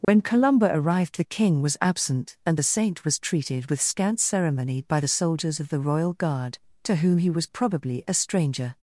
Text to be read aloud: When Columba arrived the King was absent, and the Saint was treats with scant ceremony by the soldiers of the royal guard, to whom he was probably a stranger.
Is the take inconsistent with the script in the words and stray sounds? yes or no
yes